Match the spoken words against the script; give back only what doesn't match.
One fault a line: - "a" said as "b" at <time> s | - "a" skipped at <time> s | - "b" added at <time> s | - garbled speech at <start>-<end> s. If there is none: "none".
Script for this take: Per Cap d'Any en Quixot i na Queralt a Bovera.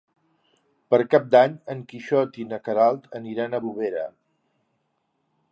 - "aniran" added at 3.2 s